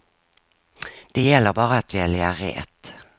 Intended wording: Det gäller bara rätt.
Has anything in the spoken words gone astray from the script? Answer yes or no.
yes